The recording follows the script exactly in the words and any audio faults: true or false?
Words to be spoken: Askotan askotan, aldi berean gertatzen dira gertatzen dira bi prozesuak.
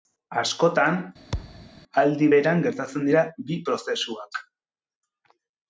false